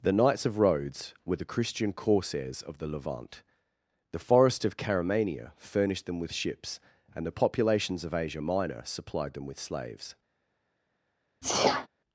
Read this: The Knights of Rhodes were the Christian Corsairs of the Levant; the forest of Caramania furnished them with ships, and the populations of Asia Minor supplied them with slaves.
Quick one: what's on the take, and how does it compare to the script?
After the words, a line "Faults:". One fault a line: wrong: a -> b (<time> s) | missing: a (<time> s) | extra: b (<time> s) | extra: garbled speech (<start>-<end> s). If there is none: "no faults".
The Knights of Rhodes were the Christian Corsairs of the Levant; the forest of Caramania furnished them with ships, and the populations of Asia Minor supplied them with slaves.
Faults:
no faults